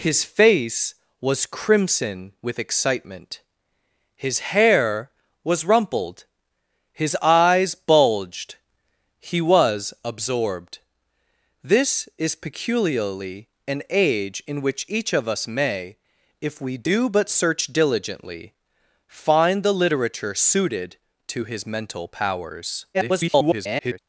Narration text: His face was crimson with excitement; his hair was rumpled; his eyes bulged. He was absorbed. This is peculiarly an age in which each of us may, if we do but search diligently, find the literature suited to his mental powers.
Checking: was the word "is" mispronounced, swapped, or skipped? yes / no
no